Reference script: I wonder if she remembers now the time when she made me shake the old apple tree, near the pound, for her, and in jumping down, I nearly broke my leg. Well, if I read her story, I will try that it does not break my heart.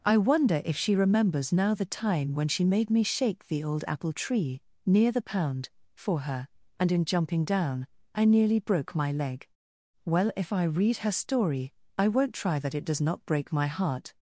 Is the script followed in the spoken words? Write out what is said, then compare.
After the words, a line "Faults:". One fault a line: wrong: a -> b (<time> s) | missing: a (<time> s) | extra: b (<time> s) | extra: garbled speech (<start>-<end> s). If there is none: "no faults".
I wonder if she remembers now the time when she made me shake the old apple tree, near the pound, for her, and in jumping down, I nearly broke my leg. Well, if I read her story, I won't try that it does not break my heart.
Faults:
wrong: will -> won't (12.1 s)